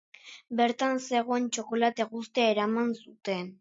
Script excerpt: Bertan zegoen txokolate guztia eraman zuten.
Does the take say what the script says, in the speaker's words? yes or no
yes